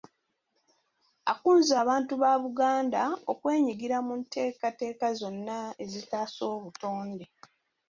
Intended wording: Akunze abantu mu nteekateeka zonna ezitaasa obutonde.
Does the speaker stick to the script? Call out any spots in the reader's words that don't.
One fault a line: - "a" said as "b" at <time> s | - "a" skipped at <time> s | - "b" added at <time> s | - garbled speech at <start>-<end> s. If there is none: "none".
- "ba Buganda okwenyigira" added at 2.2 s